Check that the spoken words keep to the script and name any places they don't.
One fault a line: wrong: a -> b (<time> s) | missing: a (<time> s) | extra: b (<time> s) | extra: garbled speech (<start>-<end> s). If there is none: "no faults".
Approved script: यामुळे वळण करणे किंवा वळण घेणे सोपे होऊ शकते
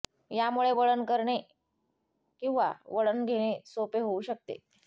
no faults